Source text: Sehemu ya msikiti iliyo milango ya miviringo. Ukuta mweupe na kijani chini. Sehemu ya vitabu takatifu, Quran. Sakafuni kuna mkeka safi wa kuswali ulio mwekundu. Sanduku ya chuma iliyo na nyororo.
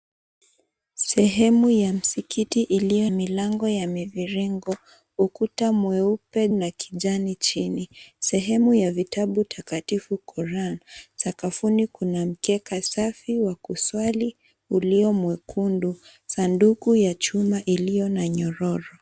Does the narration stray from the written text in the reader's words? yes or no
no